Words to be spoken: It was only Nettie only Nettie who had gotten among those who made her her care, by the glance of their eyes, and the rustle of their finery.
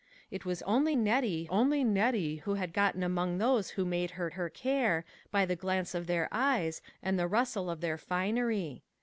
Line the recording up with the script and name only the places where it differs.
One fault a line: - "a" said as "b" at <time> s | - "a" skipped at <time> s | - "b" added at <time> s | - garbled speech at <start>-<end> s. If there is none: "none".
none